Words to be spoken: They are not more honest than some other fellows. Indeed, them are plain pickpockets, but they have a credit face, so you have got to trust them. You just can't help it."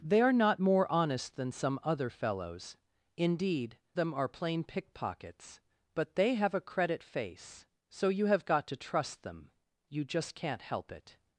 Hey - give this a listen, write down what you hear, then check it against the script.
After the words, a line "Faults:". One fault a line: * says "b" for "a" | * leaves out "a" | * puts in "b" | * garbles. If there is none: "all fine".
They are not more honest than some other fellows. Indeed, them are plain pickpockets, but they have a credit face, so you have got to trust them. You just can't help it."
Faults:
all fine